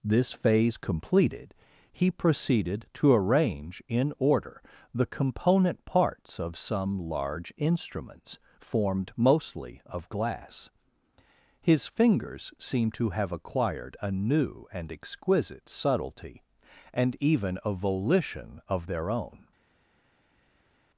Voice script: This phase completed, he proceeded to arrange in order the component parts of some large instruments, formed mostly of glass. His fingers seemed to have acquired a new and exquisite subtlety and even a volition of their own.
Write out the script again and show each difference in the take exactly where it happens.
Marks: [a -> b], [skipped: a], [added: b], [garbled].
This phase completed, he proceeded to arrange in order the component parts of some large instruments, formed mostly of glass. His fingers seemed to have acquired a new and exquisite subtlety and even a volition of their own.